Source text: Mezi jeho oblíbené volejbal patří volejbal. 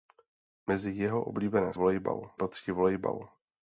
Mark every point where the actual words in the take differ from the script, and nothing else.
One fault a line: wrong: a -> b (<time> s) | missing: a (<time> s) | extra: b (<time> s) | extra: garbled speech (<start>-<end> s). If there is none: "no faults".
no faults